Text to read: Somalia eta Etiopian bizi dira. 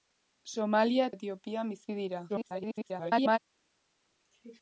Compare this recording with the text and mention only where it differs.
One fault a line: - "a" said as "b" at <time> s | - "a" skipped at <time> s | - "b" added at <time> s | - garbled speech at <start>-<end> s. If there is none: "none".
- "eta" skipped at 1.1 s
- garbled speech at 2.3-3.4 s